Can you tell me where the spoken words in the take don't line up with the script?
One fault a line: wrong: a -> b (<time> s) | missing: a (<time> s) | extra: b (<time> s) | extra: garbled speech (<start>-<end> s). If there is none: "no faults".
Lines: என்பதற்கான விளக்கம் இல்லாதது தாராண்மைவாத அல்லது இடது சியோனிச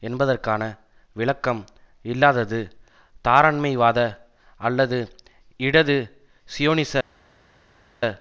no faults